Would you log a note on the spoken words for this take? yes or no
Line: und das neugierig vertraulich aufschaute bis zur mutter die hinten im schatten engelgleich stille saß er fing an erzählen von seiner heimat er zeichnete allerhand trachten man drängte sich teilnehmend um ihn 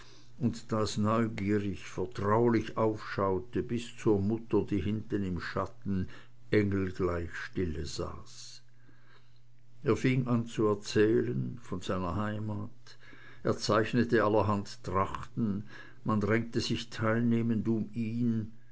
yes